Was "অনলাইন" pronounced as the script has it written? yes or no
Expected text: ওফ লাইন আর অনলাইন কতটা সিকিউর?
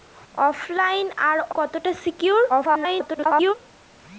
no